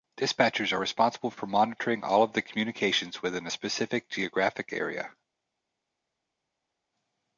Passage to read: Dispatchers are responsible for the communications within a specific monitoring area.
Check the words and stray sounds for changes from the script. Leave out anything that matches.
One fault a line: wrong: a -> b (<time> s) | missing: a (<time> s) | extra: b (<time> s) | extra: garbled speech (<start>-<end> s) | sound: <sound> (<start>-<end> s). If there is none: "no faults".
extra: monitoring all of (1.5 s)
wrong: monitoring -> geographic (4.1 s)